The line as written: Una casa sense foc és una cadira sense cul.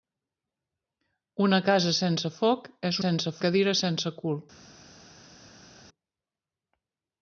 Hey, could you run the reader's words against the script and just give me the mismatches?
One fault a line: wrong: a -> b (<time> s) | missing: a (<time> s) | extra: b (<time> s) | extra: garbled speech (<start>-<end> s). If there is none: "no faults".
wrong: una -> sense (3.0 s)